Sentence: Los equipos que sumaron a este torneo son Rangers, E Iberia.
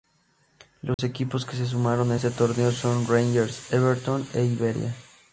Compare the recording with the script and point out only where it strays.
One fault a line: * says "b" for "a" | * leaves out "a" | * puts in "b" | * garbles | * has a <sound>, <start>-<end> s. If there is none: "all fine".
* has a dropout, 0.9-1.0 s
* puts in "se"
* puts in "Everton"